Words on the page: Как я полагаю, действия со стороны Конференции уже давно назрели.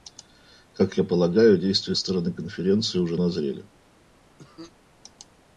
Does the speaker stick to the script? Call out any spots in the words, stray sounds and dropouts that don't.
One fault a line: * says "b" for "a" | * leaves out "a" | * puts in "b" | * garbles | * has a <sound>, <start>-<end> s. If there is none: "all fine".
* leaves out "со"
* leaves out "давно"
* has a cough, 4.4-4.7 s